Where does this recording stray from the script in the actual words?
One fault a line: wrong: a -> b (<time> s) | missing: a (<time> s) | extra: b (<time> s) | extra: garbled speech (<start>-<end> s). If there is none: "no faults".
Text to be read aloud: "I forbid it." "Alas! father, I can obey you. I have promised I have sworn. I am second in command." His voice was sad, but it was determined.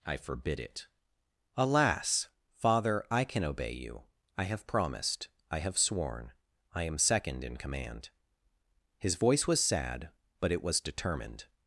no faults